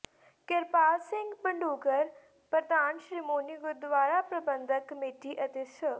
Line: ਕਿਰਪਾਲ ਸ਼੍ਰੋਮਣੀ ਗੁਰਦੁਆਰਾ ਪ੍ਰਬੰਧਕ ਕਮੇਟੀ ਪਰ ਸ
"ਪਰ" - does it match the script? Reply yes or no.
no